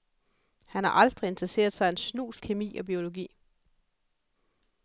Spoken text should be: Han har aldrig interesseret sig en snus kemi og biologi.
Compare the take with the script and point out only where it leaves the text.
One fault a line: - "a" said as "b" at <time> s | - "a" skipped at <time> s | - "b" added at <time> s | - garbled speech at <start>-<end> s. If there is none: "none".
none